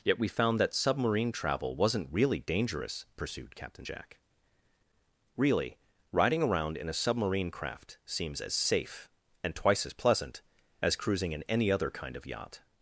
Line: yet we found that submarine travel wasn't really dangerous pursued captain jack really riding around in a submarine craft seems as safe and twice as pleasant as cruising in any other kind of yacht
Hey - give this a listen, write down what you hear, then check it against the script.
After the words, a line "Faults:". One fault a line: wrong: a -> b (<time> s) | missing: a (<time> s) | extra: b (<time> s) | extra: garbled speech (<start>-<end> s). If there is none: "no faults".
yet we found that submarine travel wasn't really dangerous pursued captain jack really riding around in a submarine craft seems as safe and twice as pleasant as cruising in any other kind of yacht
Faults:
no faults